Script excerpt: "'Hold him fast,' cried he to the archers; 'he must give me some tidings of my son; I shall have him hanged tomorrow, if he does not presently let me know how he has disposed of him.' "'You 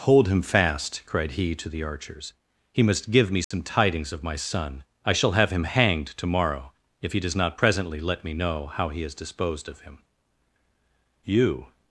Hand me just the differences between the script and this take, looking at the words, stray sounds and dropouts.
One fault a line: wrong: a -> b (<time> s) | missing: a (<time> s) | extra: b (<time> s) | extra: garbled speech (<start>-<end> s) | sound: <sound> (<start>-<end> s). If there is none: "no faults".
sound: dropout (3.4-3.5 s)